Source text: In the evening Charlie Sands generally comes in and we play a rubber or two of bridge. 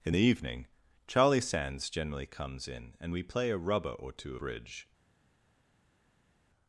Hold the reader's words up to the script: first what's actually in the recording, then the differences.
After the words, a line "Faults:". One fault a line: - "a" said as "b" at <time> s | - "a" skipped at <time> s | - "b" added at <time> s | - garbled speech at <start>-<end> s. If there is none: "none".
In the evening Charlie Sands generally comes in and we play a rubber or two bridge.
Faults:
- "of" skipped at 4.4 s